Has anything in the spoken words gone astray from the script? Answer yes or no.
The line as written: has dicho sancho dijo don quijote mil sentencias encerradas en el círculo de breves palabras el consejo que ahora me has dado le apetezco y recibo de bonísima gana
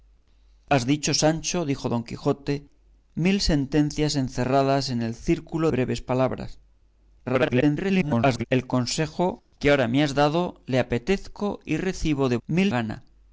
yes